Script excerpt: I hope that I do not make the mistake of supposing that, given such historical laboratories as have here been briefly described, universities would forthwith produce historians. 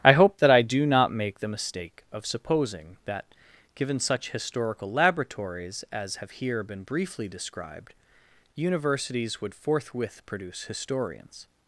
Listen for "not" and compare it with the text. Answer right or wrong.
right